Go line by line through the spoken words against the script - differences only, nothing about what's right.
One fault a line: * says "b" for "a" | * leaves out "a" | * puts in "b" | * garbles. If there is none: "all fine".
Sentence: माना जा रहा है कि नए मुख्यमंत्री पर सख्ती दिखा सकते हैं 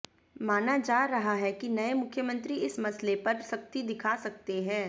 * puts in "इस मसले"